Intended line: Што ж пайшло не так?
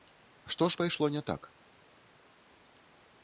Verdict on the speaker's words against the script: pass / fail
pass